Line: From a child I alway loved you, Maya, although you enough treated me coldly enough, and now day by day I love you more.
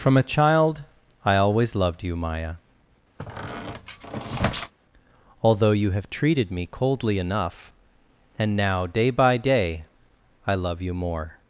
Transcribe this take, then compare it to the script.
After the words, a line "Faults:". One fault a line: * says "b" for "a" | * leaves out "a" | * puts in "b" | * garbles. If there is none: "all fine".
From a child I always loved you, Maya, although you have treated me coldly enough, and now day by day I love you more.
Faults:
* says "always" for "alway"
* says "have" for "enough"